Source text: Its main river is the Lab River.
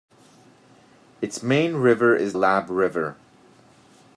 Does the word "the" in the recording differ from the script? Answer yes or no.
yes